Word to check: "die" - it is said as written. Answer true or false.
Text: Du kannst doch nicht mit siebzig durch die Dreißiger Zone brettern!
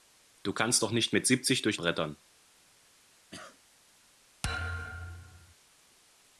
false